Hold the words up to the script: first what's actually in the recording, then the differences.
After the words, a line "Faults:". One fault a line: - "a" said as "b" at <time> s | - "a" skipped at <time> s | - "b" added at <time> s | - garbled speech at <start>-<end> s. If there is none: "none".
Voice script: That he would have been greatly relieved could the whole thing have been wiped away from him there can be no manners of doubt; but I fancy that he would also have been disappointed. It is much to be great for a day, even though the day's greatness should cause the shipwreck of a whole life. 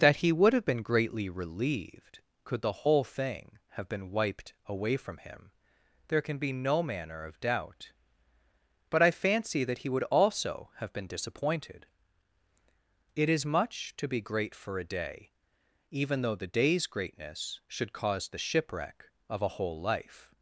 That he would have been greatly relieved could the whole thing have been wiped away from him there can be no manner of doubt; but I fancy that he would also have been disappointed. It is much to be great for a day, even though the day's greatness should cause the shipwreck of a whole life.
Faults:
- "manners" said as "manner" at 6.8 s